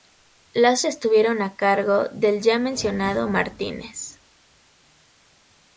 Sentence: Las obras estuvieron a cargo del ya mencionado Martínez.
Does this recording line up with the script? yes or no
no